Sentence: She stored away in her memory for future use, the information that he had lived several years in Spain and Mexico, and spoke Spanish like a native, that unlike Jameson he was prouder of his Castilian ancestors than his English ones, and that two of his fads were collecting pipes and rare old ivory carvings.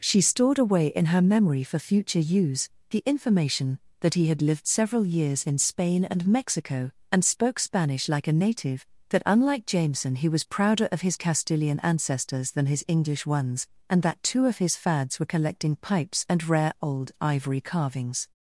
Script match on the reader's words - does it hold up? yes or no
yes